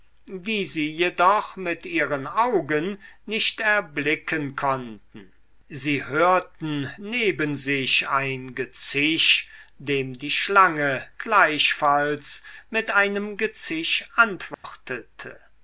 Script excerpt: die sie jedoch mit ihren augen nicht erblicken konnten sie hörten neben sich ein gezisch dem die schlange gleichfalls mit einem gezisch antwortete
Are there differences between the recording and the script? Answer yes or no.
no